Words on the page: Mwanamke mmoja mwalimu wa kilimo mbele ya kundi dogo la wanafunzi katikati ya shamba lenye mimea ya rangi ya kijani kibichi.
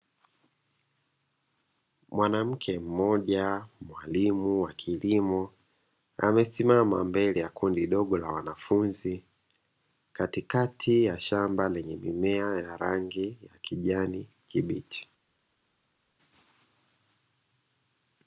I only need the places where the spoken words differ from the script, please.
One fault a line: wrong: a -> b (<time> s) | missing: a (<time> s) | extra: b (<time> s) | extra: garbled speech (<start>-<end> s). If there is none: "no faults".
extra: amesimama (6.2 s)